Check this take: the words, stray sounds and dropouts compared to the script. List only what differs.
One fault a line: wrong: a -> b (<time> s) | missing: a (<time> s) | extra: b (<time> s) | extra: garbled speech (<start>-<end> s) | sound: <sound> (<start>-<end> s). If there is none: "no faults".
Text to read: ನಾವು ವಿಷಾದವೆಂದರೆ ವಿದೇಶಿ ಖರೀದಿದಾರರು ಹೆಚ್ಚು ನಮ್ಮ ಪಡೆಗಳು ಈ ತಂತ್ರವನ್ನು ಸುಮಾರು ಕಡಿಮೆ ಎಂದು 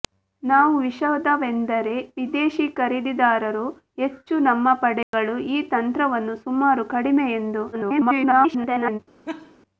sound: dropout (5.0-5.1 s)
extra: garbled speech (7.7-9.0 s)
sound: laugh (9.3-9.6 s)